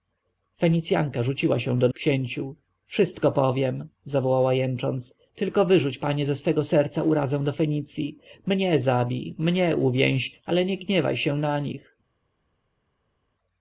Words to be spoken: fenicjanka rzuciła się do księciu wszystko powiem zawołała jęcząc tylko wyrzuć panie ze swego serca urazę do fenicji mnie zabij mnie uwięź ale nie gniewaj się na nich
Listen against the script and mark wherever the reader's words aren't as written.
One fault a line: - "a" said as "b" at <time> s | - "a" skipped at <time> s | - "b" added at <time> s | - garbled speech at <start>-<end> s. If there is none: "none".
none